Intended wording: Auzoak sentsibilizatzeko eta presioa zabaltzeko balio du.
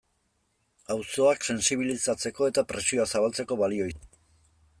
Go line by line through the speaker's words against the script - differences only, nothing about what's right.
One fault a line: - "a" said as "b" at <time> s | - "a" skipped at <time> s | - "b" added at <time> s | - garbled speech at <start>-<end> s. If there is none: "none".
none